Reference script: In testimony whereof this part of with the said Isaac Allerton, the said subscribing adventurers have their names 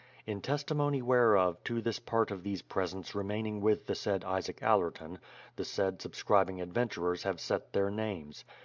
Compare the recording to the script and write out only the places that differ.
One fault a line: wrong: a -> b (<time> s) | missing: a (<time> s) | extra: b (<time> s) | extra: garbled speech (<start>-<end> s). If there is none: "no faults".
extra: to (1.6 s)
extra: these presents remaining (2.4 s)
extra: set (7.4 s)